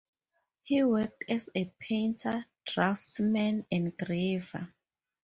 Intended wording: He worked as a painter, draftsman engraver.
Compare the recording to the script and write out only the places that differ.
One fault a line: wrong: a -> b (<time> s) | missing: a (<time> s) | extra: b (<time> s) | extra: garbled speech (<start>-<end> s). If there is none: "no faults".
no faults